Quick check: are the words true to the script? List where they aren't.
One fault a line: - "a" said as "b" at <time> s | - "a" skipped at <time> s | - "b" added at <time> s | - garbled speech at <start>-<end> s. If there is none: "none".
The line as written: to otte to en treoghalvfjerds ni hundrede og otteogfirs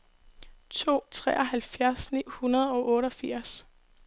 - "otte to en" skipped at 1.0 s